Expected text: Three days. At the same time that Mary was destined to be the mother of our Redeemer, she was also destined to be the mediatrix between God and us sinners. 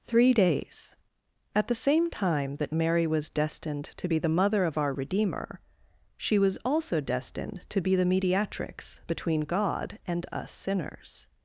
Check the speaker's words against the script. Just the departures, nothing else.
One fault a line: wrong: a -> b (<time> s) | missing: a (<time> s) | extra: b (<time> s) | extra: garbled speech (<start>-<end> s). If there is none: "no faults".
no faults